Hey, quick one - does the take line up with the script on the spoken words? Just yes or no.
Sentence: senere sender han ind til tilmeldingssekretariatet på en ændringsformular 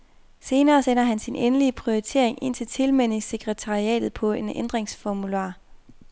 no